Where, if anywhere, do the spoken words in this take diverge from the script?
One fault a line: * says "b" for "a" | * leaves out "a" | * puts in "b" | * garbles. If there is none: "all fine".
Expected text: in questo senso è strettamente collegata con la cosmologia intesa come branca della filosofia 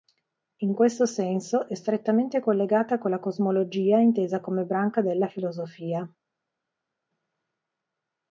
all fine